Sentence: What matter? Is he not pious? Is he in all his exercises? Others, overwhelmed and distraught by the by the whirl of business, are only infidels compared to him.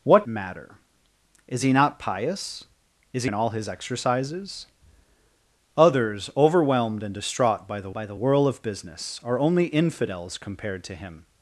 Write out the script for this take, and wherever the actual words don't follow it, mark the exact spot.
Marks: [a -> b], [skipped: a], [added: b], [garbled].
What matter? Is he not pious? Is he in all his exercises? Others, overwhelmed and distraught by the by the whirl of business, are only infidels compared to him.